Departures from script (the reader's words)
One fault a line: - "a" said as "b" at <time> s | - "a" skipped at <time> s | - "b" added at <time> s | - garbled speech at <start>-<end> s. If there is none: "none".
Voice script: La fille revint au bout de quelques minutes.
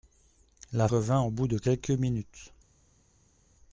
- "fille" skipped at 0.9 s